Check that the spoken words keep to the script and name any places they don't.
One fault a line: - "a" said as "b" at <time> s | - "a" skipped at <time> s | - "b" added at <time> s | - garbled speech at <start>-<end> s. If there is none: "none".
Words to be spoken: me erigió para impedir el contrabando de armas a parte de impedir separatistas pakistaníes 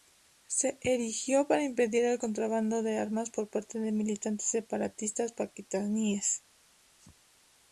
- "me" said as "se" at 0.5 s
- "a" said as "por" at 3.3 s
- "impedir" said as "militantes" at 3.9 s